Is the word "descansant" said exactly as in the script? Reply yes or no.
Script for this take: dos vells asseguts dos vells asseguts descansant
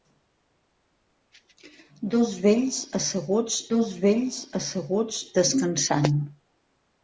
yes